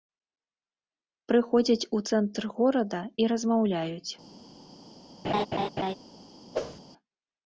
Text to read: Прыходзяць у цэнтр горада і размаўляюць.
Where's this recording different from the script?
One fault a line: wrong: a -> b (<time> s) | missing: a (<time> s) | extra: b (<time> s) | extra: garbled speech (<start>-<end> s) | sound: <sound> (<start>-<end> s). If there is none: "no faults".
sound: laugh (5.2-6.0 s)
sound: whoosh (6.5-6.8 s)